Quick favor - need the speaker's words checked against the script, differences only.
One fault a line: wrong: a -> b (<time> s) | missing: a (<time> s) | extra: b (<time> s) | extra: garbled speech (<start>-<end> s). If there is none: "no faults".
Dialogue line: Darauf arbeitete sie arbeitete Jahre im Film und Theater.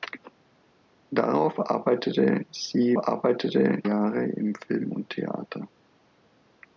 no faults